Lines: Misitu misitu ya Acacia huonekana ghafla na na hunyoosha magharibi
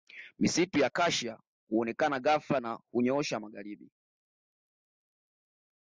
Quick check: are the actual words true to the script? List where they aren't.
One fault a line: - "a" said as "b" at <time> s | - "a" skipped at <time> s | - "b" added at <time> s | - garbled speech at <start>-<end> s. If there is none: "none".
- "misitu" skipped at 0.8 s
- "na" skipped at 2.8 s